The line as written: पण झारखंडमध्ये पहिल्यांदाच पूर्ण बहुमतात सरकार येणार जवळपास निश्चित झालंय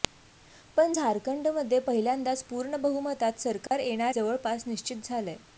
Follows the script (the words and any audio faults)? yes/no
no